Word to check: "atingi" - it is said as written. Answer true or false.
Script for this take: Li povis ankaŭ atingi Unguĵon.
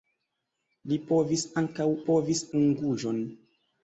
false